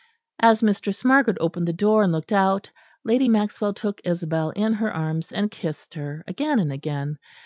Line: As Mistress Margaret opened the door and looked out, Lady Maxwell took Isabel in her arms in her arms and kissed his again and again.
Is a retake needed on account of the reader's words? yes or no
yes